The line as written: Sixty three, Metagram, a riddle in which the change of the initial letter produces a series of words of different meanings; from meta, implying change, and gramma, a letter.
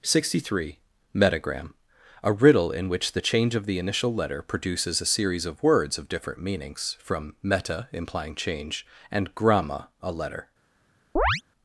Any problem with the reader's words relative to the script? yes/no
no